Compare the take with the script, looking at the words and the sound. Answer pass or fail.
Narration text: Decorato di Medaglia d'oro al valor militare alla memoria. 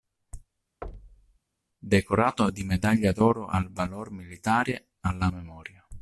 fail